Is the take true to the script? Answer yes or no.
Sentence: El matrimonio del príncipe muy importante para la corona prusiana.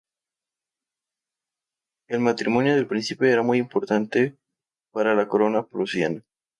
no